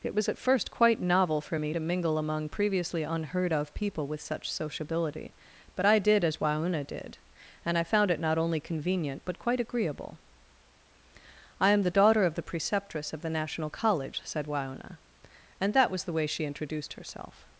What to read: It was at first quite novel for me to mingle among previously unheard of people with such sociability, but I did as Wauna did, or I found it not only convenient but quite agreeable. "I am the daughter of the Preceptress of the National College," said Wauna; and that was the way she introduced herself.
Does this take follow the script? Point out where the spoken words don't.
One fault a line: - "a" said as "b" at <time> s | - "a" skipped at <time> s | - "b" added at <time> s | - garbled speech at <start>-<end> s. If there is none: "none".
- "or" said as "and" at 7.6 s